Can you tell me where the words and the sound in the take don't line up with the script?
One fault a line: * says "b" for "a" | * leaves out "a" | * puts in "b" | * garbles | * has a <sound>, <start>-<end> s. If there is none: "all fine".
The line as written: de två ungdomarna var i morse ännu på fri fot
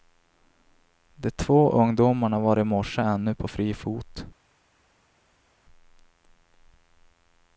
all fine